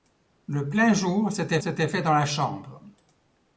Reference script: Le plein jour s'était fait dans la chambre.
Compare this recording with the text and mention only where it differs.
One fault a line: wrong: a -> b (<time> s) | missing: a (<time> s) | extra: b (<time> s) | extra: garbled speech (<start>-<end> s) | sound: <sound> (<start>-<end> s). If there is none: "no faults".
extra: s'était (1.6 s)